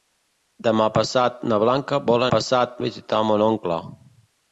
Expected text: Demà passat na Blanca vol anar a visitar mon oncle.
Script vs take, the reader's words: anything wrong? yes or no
yes